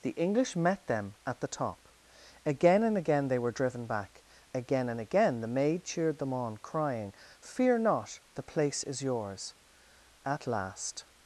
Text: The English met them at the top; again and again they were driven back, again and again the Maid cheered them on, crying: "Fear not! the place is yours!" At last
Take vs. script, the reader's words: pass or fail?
pass